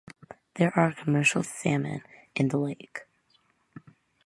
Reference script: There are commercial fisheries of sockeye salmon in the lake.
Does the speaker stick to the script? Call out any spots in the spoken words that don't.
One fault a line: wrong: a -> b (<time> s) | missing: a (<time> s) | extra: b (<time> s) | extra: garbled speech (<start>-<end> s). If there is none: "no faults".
missing: fisheries of sockeye (1.4 s)